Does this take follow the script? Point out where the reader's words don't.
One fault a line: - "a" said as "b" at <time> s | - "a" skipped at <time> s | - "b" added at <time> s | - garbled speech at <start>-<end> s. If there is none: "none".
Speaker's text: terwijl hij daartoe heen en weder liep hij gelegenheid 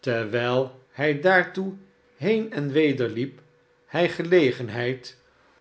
none